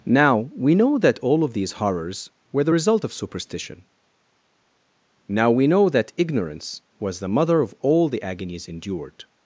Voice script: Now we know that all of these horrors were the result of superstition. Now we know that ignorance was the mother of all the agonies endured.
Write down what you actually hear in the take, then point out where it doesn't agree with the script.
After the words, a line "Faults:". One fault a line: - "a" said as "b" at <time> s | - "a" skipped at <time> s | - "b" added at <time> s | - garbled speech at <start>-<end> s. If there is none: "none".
Now we know that all of these horrors were the result of superstition. Now we know that ignorance was the mother of all the agonies endured.
Faults:
none